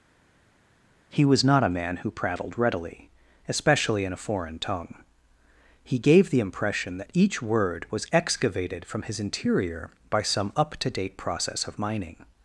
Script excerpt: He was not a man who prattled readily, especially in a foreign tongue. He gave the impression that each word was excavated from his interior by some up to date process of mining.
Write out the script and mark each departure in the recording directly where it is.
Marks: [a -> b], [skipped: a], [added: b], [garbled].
He was not a man who prattled readily, especially in a foreign tongue. He gave the impression that each word was excavated from his interior by some up to date process of mining.